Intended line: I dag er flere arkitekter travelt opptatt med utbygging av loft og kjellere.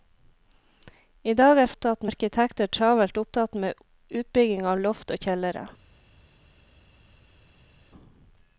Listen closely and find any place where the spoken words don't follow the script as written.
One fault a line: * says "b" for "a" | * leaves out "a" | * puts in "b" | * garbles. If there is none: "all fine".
* says "opptatt" for "flere"